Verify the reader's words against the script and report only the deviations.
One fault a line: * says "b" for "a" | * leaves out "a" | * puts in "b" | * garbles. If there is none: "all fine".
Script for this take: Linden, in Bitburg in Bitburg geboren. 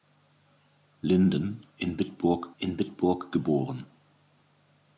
all fine